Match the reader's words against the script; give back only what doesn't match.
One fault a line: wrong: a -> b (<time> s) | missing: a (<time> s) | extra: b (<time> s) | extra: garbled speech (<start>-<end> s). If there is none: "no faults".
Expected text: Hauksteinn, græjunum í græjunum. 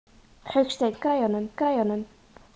no faults